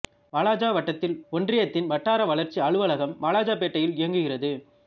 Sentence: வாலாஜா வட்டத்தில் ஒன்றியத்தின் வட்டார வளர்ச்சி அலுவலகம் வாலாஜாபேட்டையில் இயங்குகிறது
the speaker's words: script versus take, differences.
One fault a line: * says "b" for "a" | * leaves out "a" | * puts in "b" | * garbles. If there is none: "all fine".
all fine